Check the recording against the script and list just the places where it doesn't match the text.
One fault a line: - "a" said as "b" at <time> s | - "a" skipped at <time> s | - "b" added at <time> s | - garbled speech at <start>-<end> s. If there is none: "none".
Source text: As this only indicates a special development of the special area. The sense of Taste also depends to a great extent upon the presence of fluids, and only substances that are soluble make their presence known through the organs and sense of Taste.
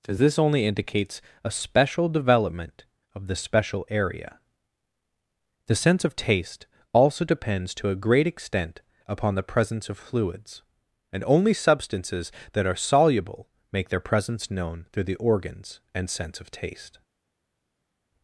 none